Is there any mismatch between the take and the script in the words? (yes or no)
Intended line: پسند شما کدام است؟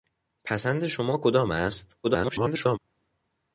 yes